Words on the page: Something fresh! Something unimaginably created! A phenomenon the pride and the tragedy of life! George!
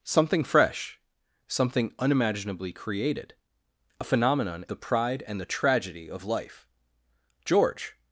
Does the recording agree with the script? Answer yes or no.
yes